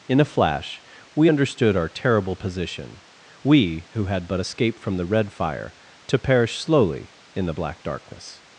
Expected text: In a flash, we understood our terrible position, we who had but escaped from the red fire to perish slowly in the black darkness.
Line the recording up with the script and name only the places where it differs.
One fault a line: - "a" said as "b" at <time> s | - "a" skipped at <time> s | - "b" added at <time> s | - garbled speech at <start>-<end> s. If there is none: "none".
none